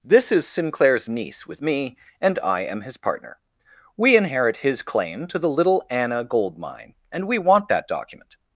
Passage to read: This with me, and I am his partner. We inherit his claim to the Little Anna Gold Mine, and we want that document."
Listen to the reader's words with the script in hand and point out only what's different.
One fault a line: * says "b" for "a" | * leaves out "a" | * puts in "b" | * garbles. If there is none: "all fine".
* puts in "is Sinclair's niece"